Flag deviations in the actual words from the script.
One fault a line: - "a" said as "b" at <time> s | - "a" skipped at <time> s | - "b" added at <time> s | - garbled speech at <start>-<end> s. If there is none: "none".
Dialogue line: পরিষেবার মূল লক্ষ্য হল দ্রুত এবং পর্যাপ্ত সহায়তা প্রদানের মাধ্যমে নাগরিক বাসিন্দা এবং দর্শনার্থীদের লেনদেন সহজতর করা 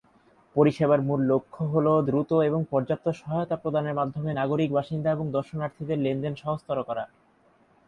none